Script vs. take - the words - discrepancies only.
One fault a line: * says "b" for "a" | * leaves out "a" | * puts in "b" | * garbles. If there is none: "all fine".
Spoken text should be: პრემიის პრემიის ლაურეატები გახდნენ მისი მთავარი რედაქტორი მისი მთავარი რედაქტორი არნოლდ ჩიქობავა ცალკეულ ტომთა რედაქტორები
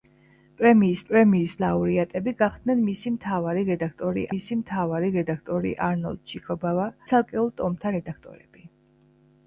all fine